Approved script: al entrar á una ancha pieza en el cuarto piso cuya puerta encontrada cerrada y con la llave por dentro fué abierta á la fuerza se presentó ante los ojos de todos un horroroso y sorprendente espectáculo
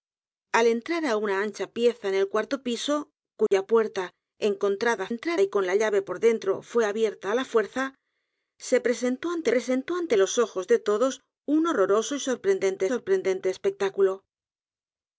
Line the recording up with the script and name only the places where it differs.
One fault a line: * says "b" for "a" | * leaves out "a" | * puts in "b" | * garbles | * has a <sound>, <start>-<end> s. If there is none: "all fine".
* has a dropout, 3.5-3.5 s
* says "entrar" for "cerrada"
* puts in "presentó ante"
* puts in "sorprendente"